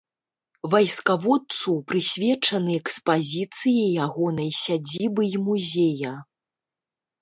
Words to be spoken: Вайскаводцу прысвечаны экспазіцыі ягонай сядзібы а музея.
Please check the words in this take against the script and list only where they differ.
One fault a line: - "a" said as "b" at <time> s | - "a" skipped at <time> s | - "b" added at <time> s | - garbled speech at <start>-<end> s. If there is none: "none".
- "а" said as "і" at 5.4 s